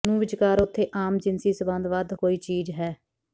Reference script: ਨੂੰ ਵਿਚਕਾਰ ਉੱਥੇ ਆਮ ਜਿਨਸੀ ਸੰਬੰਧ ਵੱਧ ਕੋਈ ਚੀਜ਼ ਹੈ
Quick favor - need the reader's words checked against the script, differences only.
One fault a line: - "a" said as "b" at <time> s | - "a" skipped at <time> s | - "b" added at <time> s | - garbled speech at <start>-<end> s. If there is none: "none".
none